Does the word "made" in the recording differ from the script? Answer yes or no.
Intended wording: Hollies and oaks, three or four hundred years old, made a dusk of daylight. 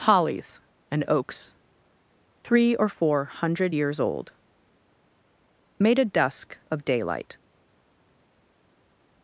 no